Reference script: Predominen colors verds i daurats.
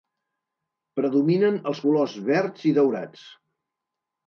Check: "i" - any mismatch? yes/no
no